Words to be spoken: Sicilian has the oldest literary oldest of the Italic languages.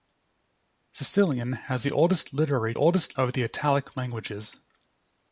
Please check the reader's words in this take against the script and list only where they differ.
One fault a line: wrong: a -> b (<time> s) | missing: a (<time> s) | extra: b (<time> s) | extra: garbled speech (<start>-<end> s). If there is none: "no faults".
no faults